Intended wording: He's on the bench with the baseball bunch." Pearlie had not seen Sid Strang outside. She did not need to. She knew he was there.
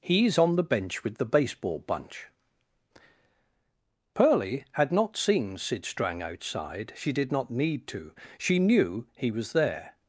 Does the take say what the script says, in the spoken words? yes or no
yes